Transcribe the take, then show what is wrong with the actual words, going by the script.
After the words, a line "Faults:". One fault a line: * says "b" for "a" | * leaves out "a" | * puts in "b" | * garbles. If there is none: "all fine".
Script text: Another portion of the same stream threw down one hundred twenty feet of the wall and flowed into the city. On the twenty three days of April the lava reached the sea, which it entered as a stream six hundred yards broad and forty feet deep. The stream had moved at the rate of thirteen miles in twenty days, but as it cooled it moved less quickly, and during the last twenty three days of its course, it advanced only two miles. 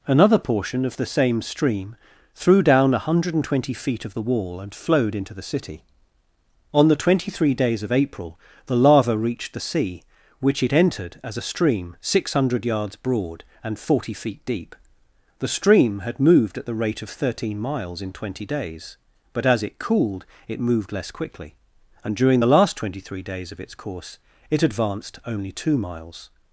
Another portion of the same stream threw down one hundred twenty feet of the wall and flowed into the city. On the twenty three days of April the lava reached the sea, which it entered as a stream six hundred yards broad and forty feet deep. The stream had moved at the rate of thirteen miles in twenty days, but as it cooled it moved less quickly, and during the last twenty three days of its course, it advanced only two miles.
Faults:
all fine